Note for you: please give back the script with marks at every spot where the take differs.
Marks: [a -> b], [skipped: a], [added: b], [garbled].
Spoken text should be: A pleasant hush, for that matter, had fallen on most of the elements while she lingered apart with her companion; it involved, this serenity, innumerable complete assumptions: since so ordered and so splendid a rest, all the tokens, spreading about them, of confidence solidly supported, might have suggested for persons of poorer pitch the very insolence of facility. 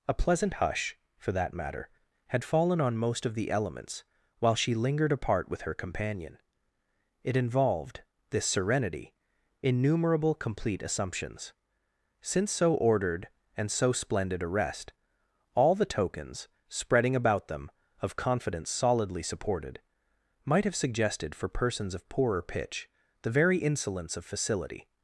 A pleasant hush, for that matter, had fallen on most of the elements while she lingered apart with her companion; it involved, this serenity, innumerable complete assumptions: since so ordered and so splendid a rest, all the tokens, spreading about them, of confidence solidly supported, might have suggested for persons of poorer pitch the very insolence of facility.